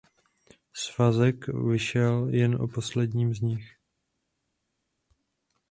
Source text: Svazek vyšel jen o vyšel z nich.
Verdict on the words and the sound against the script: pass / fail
fail